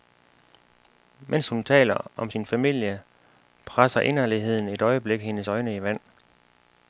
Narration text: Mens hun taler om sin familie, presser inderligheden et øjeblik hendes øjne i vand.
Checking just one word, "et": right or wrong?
right